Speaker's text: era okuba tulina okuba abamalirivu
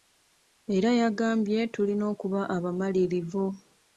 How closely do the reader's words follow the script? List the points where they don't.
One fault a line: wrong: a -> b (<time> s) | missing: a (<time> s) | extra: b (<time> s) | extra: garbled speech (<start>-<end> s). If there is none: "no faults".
wrong: okuba -> yagambye (1.0 s)